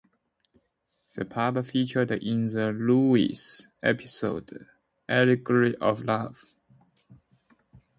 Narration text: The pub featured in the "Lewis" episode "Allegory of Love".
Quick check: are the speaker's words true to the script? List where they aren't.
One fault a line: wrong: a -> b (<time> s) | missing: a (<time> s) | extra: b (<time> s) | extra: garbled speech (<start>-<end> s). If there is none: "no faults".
no faults